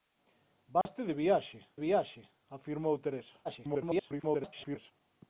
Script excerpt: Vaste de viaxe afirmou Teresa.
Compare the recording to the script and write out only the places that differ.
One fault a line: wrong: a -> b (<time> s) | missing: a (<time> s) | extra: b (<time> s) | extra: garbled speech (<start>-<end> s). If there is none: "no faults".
extra: viaxe (1.8 s)
extra: garbled speech (3.4-4.9 s)